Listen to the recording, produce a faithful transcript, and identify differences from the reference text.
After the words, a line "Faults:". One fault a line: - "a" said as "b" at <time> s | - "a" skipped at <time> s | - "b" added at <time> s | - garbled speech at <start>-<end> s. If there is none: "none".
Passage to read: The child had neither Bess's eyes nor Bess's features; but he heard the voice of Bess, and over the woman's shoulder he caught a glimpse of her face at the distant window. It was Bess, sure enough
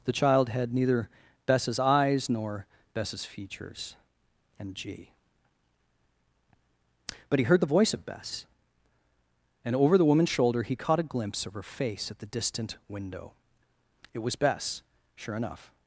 The child had neither Bess's eyes nor Bess's features; and g but he heard the voice of Bess, and over the woman's shoulder he caught a glimpse of her face at the distant window. It was Bess, sure enough
Faults:
- "and g" added at 4.6 s